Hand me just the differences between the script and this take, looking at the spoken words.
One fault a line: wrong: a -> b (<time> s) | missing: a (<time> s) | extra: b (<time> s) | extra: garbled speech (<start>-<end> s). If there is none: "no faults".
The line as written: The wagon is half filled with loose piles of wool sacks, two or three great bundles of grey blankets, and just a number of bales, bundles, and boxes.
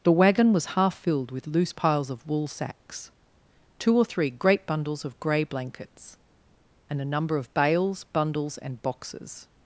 wrong: is -> was (0.5 s)
missing: just (7.0 s)